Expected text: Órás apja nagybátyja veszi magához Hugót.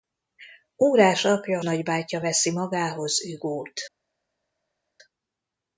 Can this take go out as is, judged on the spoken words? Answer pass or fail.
pass